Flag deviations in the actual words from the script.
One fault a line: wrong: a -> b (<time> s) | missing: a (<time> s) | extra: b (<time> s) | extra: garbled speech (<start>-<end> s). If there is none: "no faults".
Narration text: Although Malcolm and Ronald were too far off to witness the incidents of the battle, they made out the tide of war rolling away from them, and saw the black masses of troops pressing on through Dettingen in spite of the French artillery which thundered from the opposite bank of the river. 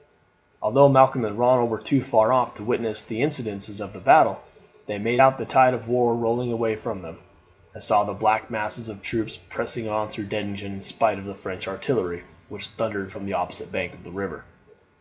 no faults